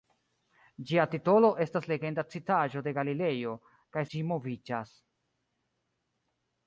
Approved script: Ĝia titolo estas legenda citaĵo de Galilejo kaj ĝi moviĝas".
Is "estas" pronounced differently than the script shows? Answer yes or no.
no